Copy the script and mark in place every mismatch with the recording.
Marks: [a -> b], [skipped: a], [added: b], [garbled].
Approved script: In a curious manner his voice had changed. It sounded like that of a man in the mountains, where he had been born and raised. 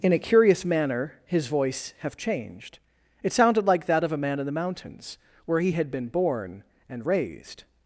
In a curious manner his voice [had -> have] changed. It sounded like that of a man in the mountains, where he had been born and raised.